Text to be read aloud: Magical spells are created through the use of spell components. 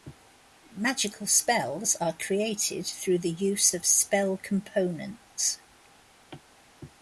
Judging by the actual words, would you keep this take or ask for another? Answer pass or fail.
pass